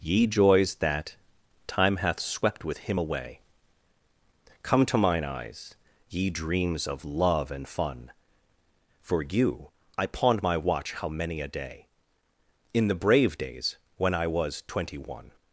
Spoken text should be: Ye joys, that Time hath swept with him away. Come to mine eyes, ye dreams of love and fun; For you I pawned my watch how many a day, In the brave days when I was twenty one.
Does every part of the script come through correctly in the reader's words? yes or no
yes